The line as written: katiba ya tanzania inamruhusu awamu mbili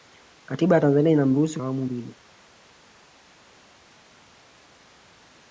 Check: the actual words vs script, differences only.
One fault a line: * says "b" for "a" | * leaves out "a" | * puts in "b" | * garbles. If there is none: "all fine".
all fine